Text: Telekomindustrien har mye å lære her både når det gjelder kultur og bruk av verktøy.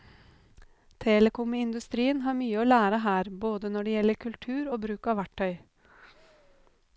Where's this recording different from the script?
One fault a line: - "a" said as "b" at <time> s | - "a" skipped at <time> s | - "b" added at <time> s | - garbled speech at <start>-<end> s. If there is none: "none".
none